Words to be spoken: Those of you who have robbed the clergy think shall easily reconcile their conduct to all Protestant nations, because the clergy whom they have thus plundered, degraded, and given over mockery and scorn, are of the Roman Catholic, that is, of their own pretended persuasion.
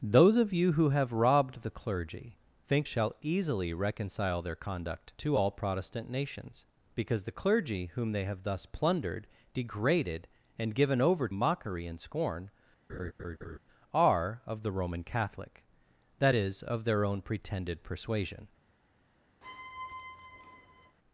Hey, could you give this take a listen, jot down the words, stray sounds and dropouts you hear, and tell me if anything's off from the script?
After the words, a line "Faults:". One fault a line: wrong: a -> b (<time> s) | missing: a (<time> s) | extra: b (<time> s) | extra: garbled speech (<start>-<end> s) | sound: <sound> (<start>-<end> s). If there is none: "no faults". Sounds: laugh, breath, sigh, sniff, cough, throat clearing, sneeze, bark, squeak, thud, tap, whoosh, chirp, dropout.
Those of you who have robbed the clergy think shall easily reconcile their conduct to all Protestant nations, because the clergy whom they have thus plundered, degraded, and given over mockery and scorn, are of the Roman Catholic, that is, of their own pretended persuasion.
Faults:
sound: laugh (12.9-13.6 s)
sound: squeak (19.4-21.0 s)